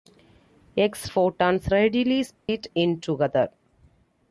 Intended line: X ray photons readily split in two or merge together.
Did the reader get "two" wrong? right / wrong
wrong